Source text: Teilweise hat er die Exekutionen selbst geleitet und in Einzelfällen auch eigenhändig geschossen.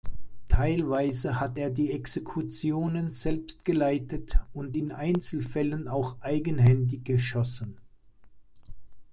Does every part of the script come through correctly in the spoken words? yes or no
yes